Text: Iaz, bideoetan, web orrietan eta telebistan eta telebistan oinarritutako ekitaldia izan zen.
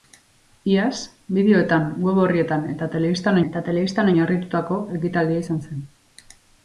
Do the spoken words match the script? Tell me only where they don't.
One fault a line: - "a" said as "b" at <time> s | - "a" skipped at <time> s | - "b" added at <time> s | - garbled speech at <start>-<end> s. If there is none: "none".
none